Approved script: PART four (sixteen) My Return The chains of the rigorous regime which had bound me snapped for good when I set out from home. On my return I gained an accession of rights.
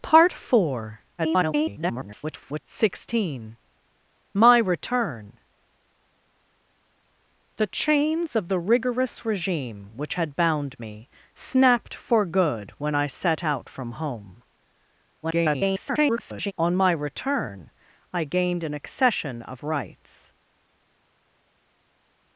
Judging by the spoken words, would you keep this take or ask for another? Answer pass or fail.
fail